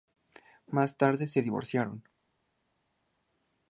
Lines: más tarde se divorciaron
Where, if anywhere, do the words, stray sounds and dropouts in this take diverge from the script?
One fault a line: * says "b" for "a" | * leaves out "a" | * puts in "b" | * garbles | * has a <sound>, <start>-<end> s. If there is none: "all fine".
all fine